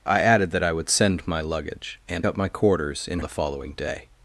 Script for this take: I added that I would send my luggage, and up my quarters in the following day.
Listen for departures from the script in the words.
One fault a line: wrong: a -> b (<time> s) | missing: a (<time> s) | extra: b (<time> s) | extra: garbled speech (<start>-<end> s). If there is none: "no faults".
no faults